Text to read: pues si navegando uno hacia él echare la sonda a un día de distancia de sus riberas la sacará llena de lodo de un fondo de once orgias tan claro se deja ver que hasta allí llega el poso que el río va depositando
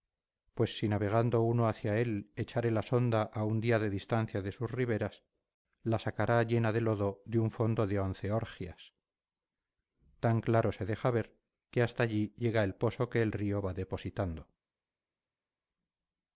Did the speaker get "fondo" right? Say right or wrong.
right